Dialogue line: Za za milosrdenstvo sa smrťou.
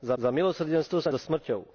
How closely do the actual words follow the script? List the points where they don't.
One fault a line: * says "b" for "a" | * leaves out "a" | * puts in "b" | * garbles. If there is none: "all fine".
all fine